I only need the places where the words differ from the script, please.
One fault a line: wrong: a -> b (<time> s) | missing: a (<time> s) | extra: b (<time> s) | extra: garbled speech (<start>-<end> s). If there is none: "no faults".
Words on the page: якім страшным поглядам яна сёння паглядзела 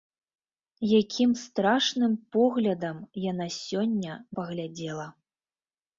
no faults